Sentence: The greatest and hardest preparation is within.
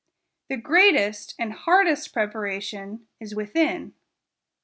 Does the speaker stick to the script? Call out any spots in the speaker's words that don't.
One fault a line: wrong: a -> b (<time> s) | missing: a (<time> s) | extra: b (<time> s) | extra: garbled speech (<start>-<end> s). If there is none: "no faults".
no faults